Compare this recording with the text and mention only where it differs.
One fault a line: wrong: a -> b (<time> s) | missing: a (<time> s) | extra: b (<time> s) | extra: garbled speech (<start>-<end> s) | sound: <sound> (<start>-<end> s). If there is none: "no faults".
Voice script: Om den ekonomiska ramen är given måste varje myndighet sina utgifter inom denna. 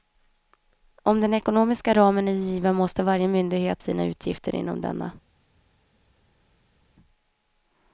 no faults